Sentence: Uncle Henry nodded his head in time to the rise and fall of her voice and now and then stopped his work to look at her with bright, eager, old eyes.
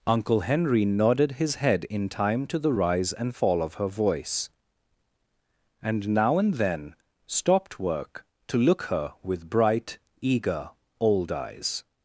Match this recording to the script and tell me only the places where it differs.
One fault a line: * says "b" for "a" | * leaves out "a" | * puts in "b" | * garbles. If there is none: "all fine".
* leaves out "his"
* leaves out "at"